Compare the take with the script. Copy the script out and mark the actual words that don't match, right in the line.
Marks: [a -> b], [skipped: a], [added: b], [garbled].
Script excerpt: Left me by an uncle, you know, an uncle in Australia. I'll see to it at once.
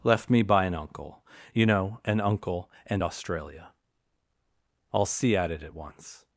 Left me by an uncle, you know, an uncle [in -> and] Australia. I'll see [to -> at] it at once.